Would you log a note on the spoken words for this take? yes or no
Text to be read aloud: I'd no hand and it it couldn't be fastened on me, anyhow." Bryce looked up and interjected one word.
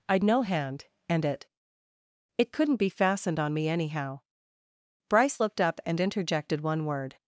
no